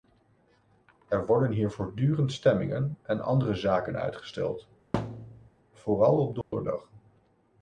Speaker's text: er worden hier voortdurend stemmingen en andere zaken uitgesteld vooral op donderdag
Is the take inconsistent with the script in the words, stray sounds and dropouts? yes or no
yes